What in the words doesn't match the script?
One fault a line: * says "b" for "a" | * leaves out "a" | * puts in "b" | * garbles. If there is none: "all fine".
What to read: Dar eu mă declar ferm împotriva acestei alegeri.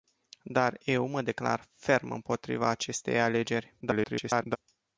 * garbles